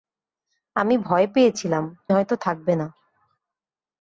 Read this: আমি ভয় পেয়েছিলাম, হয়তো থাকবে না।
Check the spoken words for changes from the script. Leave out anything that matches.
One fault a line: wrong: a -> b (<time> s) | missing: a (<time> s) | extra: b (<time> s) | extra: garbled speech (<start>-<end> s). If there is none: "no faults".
no faults